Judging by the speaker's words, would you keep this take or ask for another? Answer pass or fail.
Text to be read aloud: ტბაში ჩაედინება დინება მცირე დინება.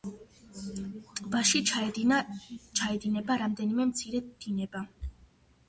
fail